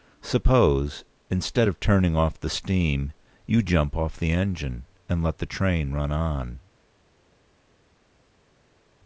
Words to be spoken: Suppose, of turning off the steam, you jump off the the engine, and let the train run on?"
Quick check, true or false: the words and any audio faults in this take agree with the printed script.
false